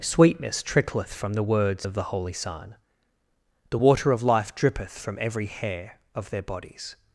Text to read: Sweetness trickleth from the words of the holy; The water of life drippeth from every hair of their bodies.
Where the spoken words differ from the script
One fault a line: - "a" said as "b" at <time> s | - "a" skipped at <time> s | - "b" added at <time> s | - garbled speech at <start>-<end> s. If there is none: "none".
- "son" added at 2.3 s